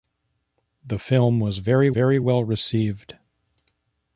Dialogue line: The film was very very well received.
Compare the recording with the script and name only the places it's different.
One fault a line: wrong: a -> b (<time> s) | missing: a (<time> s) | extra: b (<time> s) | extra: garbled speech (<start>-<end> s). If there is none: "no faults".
no faults